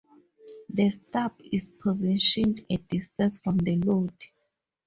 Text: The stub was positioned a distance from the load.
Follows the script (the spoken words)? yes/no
no